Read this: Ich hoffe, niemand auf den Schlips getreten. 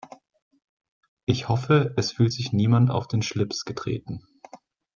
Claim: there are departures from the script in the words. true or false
true